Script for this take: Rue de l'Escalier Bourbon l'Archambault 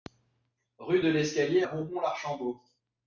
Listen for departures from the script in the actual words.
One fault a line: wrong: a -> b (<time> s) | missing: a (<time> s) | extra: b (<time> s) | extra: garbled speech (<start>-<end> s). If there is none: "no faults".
no faults